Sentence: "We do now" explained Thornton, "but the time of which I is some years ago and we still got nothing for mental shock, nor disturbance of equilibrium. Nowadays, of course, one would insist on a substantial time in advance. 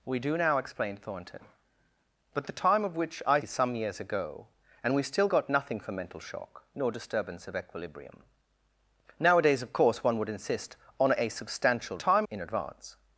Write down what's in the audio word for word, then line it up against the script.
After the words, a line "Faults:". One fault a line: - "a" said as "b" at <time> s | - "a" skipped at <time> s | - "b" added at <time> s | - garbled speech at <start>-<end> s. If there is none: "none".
"We do now" explained Thornton, "but the time of which I is some years ago and we still got nothing for mental shock, nor disturbance of equilibrium. Nowadays, of course, one would insist on a substantial time in advance.
Faults:
none